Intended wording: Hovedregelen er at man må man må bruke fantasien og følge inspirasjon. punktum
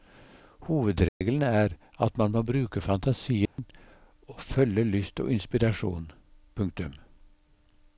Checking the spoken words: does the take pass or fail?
fail